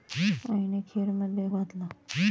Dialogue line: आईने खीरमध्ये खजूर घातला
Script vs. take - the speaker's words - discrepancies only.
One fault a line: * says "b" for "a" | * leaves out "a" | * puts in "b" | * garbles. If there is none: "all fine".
* leaves out "खजूर"